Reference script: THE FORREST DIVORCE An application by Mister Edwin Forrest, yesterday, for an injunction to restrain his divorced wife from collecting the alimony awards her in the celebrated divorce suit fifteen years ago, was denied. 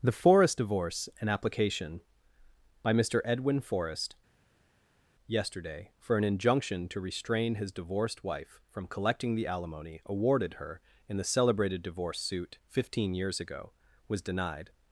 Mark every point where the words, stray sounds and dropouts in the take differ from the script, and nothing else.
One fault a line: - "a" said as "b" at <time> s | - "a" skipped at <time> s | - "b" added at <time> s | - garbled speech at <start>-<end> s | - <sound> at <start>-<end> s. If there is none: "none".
- "awards" said as "awarded" at 10.0 s